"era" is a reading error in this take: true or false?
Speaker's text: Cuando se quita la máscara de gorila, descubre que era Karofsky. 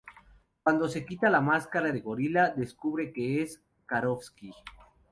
true